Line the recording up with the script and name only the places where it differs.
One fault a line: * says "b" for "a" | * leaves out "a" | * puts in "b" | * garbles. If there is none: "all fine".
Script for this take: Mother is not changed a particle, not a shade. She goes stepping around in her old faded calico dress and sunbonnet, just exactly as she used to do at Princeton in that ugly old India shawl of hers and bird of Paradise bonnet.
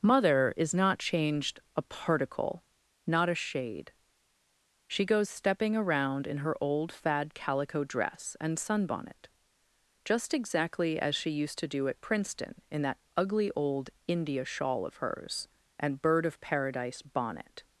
* says "fad" for "faded"